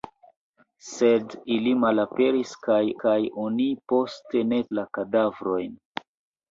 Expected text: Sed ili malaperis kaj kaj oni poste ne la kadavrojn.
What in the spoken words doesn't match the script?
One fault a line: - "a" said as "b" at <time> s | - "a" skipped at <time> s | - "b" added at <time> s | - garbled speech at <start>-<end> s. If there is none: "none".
none